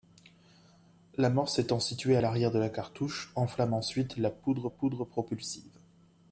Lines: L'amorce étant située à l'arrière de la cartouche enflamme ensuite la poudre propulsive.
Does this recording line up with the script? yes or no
no